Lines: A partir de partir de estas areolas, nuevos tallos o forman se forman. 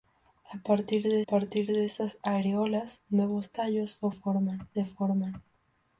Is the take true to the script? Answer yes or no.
yes